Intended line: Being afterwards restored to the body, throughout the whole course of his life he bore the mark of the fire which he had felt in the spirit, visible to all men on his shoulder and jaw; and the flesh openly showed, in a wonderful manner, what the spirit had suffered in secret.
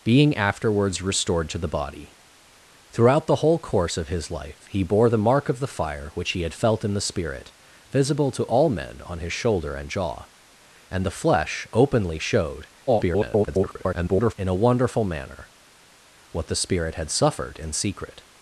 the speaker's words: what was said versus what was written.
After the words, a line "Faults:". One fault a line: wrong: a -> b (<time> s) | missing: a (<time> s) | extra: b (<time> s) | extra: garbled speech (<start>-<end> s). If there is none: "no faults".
Being afterwards restored to the body, throughout the whole course of his life he bore the mark of the fire which he had felt in the spirit, visible to all men on his shoulder and jaw; and the flesh openly showed, [garbled] in a wonderful manner, what the spirit had suffered in secret.
Faults:
extra: garbled speech (12.9-14.3 s)